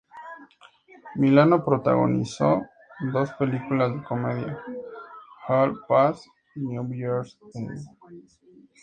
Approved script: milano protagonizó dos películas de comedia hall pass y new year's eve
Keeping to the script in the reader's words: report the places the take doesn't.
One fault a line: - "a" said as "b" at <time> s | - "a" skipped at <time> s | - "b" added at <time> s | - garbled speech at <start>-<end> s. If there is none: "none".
none